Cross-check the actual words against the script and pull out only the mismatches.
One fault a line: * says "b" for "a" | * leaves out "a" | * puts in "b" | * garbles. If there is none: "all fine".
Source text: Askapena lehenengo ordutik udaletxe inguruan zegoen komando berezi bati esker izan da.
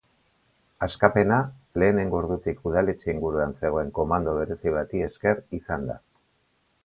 all fine